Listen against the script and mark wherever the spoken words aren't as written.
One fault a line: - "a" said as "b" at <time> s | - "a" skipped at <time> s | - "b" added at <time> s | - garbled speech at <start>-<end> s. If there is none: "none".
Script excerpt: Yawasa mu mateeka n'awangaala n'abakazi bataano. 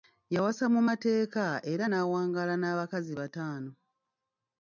- "era" added at 1.7 s